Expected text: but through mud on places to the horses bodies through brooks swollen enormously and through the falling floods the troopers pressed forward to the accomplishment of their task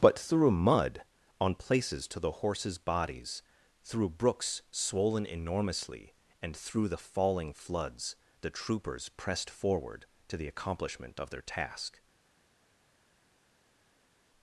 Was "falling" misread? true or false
false